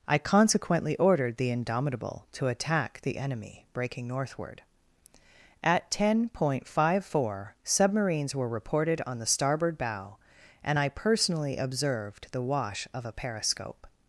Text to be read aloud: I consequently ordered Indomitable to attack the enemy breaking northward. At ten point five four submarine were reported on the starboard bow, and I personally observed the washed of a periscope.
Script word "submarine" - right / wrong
wrong